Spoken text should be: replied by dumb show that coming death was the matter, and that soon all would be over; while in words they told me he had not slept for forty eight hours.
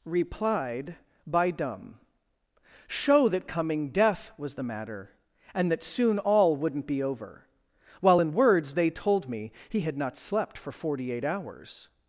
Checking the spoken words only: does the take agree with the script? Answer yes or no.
no